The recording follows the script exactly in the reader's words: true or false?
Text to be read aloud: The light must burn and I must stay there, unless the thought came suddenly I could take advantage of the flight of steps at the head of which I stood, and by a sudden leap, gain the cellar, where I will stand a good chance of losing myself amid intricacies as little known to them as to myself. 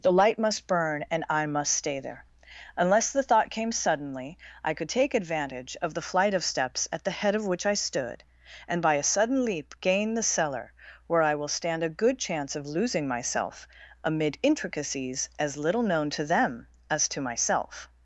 true